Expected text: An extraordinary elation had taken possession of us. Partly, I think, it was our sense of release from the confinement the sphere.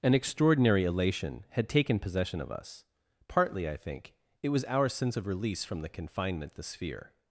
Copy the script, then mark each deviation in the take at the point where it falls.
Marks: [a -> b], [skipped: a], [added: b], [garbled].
An extraordinary elation had taken possession of us. Partly, I think, it was our sense of release from the confinement the sphere.